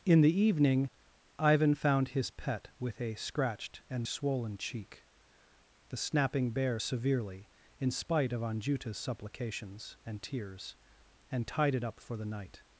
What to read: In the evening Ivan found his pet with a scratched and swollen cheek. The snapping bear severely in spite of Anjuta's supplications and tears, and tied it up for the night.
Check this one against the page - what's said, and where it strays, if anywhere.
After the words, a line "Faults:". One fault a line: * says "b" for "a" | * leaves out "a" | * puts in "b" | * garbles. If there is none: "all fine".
In the evening Ivan found his pet with a scratched and swollen cheek. The snapping bear severely in spite of Anjuta's supplications and tears, and tied it up for the night.
Faults:
all fine